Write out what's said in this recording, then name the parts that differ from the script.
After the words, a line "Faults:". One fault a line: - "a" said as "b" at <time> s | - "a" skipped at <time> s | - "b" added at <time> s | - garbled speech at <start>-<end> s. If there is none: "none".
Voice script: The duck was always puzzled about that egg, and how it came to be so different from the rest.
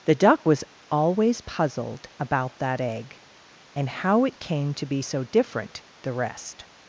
The duck was always puzzled about that egg, and how it came to be so different the rest.
Faults:
- "from" skipped at 5.8 s